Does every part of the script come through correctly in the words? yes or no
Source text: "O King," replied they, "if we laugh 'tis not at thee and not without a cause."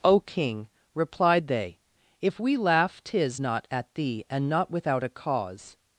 yes